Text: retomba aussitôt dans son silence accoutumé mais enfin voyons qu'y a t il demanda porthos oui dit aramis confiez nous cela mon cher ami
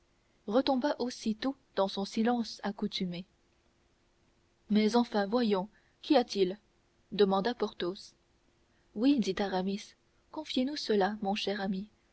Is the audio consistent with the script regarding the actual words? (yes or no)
yes